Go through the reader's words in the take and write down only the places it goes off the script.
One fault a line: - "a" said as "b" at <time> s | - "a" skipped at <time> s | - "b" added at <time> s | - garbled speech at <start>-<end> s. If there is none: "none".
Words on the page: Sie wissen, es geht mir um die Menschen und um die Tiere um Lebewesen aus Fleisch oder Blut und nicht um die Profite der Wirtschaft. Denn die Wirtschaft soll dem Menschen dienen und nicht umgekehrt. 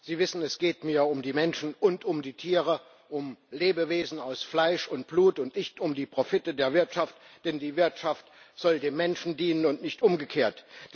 - "oder" said as "und" at 4.9 s